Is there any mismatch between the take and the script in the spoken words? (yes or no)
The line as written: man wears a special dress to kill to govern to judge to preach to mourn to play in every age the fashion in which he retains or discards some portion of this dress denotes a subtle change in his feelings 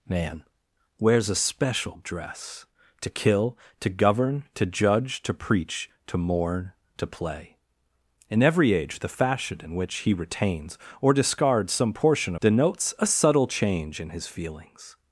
yes